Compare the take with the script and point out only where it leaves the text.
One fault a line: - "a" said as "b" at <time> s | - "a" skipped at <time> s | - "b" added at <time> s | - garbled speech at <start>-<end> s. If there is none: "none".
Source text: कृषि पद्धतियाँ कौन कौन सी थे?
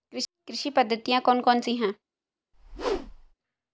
- "थे" said as "हैं" at 1.8 s